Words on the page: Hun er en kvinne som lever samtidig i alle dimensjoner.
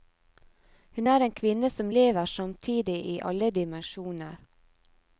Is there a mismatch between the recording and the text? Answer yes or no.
no